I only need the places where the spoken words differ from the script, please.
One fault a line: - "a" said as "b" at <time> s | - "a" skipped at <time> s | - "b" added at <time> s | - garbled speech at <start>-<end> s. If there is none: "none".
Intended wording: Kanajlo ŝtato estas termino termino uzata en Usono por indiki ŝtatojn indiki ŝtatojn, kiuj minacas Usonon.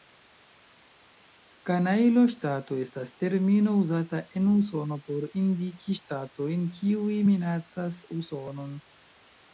- "termino" skipped at 3.8 s
- "indiki ŝtatojn" skipped at 6.7 s